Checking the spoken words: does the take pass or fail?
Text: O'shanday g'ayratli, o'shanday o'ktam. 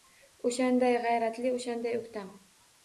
pass